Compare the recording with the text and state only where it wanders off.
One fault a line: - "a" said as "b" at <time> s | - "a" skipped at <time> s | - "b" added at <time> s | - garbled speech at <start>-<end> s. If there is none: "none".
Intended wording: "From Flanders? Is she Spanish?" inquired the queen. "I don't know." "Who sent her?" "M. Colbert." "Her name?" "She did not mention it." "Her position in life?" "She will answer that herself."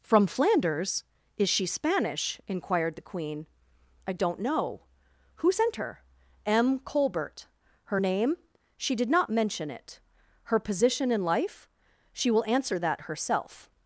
none